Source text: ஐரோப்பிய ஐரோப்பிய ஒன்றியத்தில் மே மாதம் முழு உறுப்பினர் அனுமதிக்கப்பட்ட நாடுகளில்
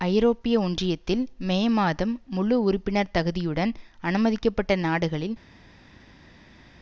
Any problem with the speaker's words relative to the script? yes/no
yes